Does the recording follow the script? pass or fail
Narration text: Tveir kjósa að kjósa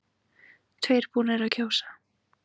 fail